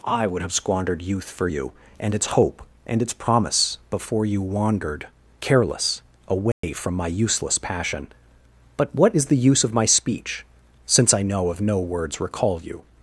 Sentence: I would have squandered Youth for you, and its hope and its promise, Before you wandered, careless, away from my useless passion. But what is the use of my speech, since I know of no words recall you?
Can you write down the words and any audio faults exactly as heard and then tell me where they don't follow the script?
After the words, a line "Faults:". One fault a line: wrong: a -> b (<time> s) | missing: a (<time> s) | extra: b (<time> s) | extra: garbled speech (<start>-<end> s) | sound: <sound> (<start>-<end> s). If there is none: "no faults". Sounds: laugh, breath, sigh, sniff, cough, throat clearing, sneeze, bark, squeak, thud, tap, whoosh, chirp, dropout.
I would have squandered Youth for you, and its hope and its promise, Before you wandered, careless, away from my useless passion. But what is the use of my speech, since I know of no words recall you?
Faults:
sound: dropout (6.5-6.6 s)